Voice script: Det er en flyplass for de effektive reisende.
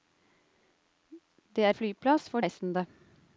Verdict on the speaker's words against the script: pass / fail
fail